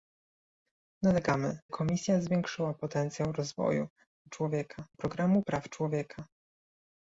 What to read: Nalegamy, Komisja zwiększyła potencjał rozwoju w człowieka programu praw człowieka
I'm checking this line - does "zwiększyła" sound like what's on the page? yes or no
yes